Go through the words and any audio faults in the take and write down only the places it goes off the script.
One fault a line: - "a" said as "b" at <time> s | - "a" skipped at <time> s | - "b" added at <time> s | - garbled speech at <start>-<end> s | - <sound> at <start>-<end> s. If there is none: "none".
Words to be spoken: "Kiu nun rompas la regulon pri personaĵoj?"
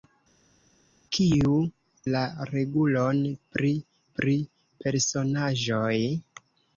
- "nun rompas" skipped at 1.6 s
- "pri" added at 4.2 s